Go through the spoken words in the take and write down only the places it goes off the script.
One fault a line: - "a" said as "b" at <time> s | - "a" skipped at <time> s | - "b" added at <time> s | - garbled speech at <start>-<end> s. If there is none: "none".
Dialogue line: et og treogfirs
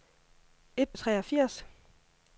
none